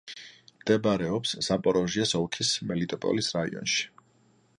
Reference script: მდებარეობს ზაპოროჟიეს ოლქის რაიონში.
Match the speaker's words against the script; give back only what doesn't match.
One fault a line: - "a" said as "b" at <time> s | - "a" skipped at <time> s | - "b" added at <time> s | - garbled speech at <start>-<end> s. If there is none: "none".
- "მელიტოპოლის" added at 2.7 s